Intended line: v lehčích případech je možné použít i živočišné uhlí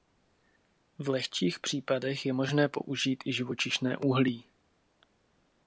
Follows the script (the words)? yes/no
yes